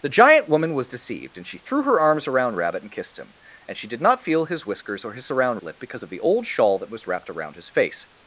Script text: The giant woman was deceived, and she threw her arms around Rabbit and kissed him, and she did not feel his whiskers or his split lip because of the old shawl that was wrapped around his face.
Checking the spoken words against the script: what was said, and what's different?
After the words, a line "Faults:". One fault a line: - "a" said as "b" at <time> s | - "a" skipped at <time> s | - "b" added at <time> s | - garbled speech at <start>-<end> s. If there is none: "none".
The giant woman was deceived, and she threw her arms around Rabbit and kissed him, and she did not feel his whiskers or his around lip because of the old shawl that was wrapped around his face.
Faults:
- "split" said as "around" at 5.3 s